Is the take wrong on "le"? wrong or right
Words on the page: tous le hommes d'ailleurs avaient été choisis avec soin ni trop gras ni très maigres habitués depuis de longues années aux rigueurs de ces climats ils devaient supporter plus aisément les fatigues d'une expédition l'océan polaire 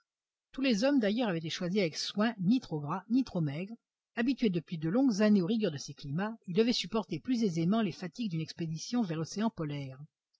wrong